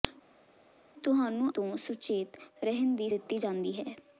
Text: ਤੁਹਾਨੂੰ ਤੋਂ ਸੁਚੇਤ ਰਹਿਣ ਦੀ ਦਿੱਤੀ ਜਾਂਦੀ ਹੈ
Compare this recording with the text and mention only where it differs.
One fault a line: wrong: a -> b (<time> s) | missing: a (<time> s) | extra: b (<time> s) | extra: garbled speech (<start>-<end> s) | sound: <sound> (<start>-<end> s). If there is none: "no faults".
no faults